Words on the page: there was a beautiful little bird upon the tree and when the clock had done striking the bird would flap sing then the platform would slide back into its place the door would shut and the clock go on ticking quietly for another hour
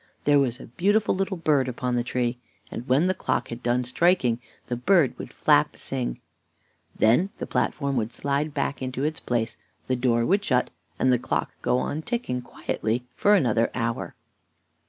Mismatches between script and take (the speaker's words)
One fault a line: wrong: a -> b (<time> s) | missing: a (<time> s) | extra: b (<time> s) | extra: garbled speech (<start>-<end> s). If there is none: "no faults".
no faults